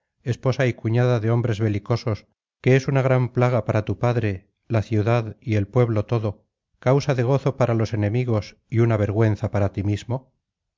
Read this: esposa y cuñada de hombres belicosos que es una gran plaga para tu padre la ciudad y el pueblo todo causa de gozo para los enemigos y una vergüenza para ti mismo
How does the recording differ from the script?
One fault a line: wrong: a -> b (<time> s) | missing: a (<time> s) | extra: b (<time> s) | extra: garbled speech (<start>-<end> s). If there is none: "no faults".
no faults